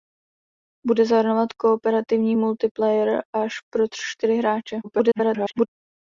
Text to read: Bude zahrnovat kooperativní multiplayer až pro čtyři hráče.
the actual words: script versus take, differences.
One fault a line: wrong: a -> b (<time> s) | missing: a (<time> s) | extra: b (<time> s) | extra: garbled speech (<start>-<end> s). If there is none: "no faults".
extra: garbled speech (4.8-5.7 s)